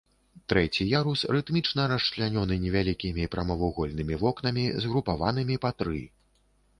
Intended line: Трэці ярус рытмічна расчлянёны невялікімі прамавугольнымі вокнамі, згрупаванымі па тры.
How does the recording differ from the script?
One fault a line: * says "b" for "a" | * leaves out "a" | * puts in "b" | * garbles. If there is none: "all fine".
all fine